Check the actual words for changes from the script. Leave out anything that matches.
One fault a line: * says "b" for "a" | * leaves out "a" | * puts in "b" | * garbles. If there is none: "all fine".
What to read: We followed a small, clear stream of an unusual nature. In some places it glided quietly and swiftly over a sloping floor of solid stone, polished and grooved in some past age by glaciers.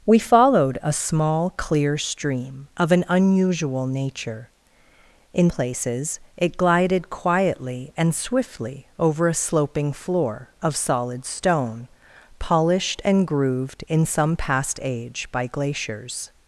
* leaves out "some"